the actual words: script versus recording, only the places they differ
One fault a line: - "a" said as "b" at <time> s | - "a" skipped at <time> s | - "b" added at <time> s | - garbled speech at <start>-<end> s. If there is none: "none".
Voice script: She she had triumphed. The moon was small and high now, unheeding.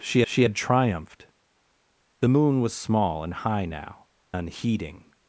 none